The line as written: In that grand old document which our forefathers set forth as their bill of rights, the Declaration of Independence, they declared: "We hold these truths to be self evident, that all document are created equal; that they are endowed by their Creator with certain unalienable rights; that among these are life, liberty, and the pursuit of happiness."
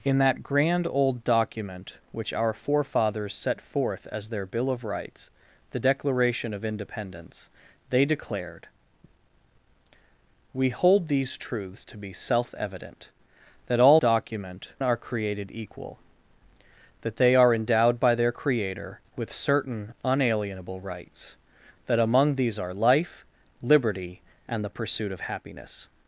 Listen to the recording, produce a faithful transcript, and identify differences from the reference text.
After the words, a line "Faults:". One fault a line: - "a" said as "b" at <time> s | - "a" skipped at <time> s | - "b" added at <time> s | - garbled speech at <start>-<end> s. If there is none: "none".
In that grand old document which our forefathers set forth as their bill of rights, the Declaration of Independence, they declared: "We hold these truths to be self evident, that all document are created equal; that they are endowed by their Creator with certain unalienable rights; that among these are life, liberty, and the pursuit of happiness."
Faults:
none